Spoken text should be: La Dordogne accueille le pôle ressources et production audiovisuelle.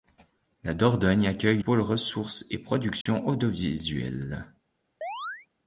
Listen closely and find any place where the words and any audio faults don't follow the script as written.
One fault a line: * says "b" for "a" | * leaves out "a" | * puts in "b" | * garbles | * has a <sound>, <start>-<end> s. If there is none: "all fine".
* leaves out "le"
* has a dropout, 3.0-3.1 s
* has a chirp, 5.0-5.5 s